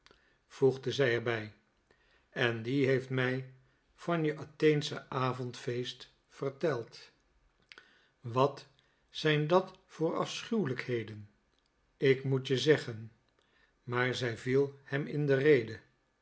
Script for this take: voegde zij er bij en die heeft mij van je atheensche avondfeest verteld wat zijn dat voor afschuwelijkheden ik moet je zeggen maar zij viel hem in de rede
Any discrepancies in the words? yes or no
no